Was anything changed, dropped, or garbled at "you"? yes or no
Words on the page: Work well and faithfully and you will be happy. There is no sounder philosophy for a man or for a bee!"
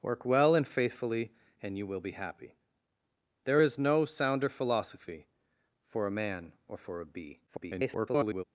no